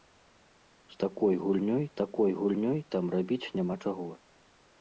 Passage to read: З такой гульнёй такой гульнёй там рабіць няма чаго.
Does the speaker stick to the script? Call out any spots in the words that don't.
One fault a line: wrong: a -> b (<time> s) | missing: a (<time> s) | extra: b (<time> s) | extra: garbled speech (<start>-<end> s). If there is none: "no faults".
no faults